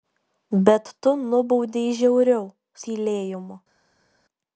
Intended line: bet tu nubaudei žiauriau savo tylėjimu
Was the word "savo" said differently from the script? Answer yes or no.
yes